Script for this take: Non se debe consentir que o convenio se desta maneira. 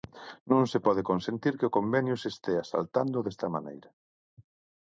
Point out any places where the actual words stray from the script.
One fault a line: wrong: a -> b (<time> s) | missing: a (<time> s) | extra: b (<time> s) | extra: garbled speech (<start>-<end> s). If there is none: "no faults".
wrong: debe -> pode (0.8 s)
extra: estea saltando (2.3 s)